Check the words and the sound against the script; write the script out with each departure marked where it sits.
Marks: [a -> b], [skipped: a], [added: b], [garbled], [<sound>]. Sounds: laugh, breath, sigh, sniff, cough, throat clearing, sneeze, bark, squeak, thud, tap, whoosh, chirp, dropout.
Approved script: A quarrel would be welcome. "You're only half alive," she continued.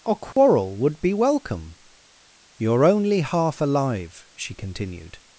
A quarrel [dropout] would be welcome. "You're only half alive," she continued.